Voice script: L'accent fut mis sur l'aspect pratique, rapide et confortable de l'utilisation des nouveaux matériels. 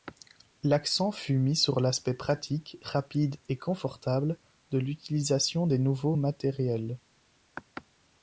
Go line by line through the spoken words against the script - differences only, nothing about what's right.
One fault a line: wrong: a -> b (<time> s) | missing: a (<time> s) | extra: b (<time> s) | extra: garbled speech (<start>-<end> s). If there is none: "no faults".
no faults